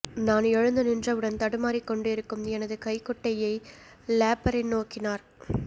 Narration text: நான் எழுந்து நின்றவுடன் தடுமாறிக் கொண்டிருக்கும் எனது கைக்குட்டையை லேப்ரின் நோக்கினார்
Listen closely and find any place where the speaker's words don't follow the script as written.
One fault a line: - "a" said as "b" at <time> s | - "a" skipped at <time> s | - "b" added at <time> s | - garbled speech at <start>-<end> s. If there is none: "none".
none